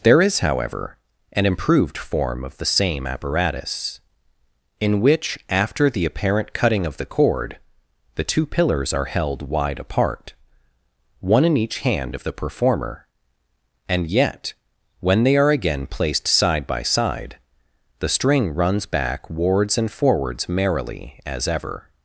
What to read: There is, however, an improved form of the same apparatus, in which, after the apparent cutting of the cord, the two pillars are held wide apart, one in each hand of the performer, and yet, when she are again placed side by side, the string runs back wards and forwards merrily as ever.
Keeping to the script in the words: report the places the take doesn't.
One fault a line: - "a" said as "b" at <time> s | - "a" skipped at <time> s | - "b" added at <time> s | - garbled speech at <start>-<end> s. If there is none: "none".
- "she" said as "they" at 15.2 s